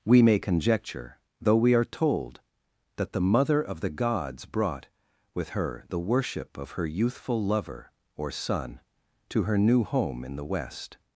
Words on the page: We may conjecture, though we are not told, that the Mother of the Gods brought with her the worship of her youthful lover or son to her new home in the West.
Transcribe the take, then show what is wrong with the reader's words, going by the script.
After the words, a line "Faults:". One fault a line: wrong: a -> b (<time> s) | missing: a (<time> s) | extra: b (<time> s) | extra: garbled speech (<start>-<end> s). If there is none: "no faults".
We may conjecture, though we are told, that the Mother of the Gods brought with her the worship of her youthful lover or son to her new home in the West.
Faults:
missing: not (1.9 s)